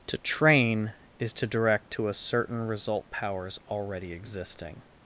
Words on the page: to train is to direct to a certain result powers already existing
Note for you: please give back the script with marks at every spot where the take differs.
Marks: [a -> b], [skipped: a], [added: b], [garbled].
to train is to direct to a certain result powers already existing